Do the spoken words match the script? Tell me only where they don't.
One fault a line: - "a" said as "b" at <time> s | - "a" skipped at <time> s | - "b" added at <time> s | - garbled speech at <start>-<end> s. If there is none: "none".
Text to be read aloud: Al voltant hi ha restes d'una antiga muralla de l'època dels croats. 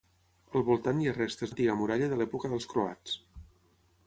- "d'una" skipped at 1.5 s